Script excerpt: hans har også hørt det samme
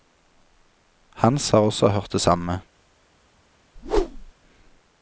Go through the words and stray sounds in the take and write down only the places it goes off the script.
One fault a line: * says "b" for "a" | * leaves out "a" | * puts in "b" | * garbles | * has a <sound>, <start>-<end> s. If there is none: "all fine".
* has a whoosh, 3.8-4.3 s